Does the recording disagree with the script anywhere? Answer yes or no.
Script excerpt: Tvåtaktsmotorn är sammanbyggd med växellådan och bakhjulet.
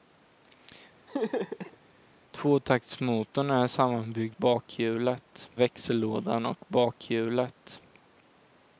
yes